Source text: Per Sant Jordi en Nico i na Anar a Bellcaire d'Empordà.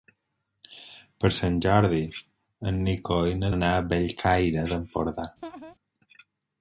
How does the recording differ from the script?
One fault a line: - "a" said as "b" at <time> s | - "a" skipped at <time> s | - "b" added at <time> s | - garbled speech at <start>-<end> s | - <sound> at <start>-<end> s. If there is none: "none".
- laugh at 5.4-5.7 s